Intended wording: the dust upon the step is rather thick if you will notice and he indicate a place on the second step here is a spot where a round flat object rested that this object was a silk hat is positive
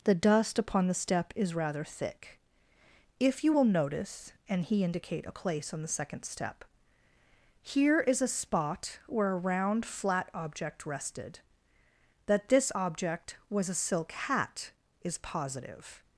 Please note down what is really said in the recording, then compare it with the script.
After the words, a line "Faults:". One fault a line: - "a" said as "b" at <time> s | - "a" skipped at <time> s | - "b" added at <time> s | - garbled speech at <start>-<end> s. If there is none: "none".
the dust upon the step is rather thick if you will notice and he indicate a place on the second step here is a spot where a round flat object rested that this object was a silk hat is positive
Faults:
none